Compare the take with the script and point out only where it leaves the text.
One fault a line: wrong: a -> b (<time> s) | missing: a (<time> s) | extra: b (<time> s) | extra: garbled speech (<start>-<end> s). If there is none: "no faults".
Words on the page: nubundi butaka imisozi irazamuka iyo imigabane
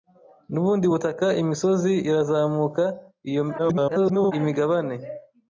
extra: garbled speech (3.6-4.3 s)